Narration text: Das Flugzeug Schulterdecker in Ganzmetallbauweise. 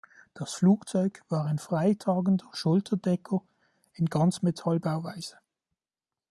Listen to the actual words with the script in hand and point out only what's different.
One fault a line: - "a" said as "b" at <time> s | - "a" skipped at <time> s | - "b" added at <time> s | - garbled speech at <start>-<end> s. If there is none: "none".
- "war ein freitragender" added at 1.3 s